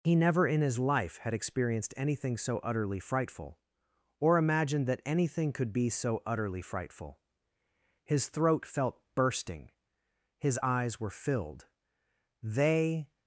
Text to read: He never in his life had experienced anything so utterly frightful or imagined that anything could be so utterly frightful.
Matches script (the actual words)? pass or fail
fail